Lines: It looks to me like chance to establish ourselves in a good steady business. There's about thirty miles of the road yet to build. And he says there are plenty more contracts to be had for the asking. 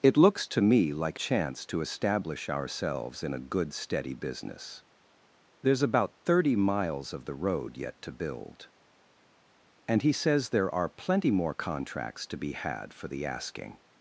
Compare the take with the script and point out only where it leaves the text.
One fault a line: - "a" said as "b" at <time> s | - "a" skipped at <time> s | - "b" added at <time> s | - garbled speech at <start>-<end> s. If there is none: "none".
none